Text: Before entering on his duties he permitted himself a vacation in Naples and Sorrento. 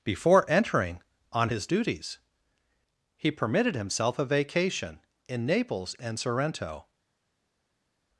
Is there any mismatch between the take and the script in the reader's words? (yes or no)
no